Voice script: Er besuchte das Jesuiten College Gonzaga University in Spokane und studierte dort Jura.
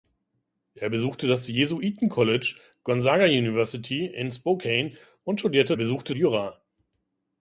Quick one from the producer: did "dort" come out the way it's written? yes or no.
no